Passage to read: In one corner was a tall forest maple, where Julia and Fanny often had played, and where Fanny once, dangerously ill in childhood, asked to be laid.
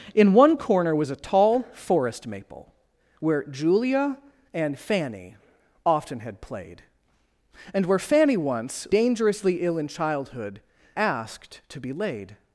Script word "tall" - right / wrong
right